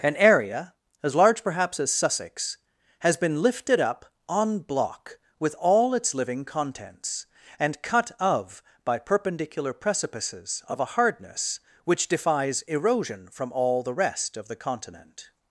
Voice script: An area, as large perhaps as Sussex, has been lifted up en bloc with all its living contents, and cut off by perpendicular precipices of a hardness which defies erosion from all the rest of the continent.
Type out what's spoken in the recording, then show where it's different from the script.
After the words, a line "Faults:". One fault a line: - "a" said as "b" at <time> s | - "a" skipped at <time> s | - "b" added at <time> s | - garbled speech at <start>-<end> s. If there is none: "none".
An area, as large perhaps as Sussex, has been lifted up en bloc with all its living contents, and cut of by perpendicular precipices of a hardness which defies erosion from all the rest of the continent.
Faults:
- "off" said as "of" at 8.2 s